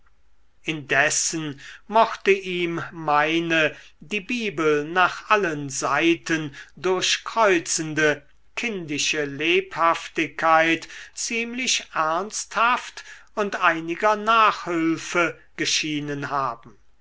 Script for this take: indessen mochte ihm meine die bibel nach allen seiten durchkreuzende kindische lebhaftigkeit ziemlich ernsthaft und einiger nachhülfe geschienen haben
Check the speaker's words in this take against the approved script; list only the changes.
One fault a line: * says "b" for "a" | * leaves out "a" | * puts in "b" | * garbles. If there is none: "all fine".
all fine